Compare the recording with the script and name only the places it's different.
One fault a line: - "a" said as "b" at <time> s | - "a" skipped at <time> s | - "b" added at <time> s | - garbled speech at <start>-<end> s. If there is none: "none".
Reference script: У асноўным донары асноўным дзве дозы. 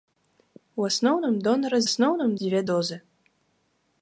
none